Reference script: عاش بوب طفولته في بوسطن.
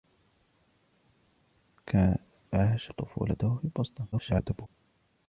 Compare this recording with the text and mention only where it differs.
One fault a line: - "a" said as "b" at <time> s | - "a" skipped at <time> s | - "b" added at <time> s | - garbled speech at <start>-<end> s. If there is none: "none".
- "بوب" skipped at 2.9 s
- garbled speech at 4.1-4.7 s